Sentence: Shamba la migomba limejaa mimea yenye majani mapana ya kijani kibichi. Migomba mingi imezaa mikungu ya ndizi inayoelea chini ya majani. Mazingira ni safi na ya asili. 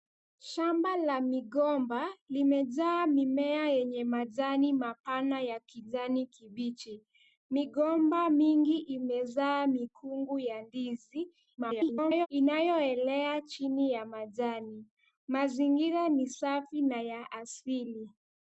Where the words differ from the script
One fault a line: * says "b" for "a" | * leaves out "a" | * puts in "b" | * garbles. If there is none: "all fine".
* garbles